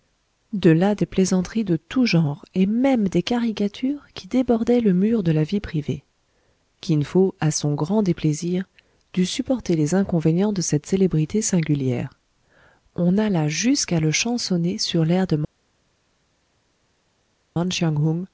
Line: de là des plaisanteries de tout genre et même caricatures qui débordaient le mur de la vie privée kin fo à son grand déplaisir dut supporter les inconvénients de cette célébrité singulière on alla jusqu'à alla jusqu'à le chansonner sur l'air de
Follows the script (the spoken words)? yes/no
no